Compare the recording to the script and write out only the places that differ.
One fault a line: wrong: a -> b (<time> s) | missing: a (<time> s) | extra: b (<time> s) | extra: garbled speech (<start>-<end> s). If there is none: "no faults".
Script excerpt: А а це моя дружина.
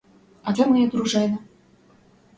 missing: а (0.5 s)